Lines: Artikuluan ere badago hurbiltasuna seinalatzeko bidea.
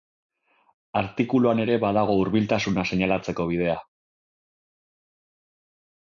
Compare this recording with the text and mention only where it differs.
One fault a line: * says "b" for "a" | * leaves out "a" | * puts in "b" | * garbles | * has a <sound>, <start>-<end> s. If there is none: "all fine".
all fine